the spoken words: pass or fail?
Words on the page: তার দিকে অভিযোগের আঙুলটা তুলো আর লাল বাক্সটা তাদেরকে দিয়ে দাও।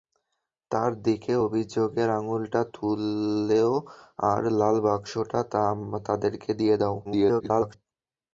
fail